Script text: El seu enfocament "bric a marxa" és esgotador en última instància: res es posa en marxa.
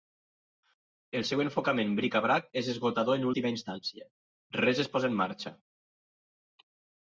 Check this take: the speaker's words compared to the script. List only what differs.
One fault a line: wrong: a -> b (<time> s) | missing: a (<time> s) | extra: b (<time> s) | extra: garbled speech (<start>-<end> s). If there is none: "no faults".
wrong: marxa -> brac (2.3 s)